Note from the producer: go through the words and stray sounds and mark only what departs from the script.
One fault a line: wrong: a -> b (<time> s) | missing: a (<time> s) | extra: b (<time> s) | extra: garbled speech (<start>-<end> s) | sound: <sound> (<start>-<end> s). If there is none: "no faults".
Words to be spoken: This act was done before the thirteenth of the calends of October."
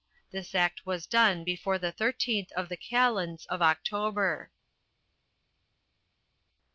no faults